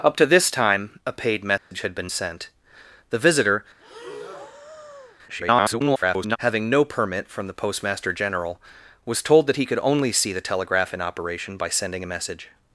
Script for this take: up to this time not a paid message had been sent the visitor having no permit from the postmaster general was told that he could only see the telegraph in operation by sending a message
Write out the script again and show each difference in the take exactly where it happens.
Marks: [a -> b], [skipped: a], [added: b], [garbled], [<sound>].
up to this time [skipped: not] a paid message [dropout] had been sent the visitor [breath] [garbled] having no permit from the postmaster general was told that he could only see the telegraph in operation by sending a message